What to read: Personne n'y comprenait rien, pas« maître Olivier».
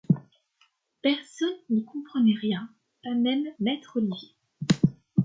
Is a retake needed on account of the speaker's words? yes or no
yes